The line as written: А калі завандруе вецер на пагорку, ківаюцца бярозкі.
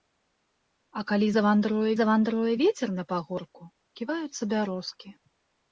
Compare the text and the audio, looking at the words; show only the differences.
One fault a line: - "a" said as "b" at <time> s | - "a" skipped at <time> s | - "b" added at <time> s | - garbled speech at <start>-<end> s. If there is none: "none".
- "завандруе" added at 2.0 s